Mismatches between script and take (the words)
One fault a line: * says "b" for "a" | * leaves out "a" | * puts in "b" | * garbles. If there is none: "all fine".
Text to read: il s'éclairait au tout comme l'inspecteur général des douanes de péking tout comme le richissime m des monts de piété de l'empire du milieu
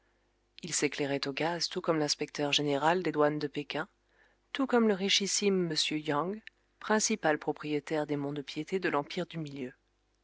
* puts in "gaz"
* puts in "yang principal propriétaire"